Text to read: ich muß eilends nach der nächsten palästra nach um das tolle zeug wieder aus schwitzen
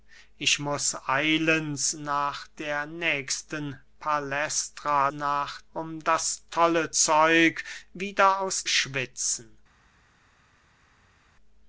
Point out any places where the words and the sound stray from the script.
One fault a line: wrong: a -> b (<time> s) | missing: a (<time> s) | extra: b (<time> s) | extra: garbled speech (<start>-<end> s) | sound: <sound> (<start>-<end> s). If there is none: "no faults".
no faults